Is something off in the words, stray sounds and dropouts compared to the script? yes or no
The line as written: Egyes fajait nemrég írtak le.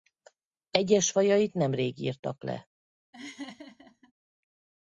yes